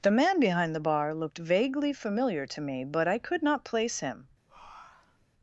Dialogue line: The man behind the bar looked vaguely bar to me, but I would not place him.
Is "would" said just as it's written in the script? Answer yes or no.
no